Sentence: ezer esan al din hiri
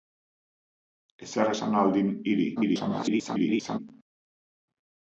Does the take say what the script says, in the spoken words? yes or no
no